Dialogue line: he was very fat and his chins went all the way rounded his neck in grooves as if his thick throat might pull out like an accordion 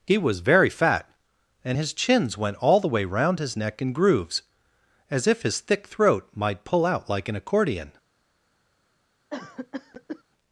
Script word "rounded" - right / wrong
wrong